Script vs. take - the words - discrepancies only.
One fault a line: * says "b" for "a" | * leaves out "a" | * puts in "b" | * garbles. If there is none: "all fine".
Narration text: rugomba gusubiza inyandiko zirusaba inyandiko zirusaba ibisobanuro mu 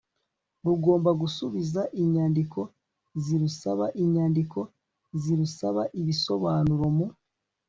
all fine